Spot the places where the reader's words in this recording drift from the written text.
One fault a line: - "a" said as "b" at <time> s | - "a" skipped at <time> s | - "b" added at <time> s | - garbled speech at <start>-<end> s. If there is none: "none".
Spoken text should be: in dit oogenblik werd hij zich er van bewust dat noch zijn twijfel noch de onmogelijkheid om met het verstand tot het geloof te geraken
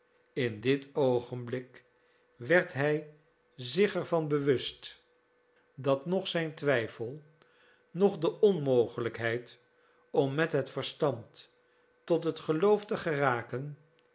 none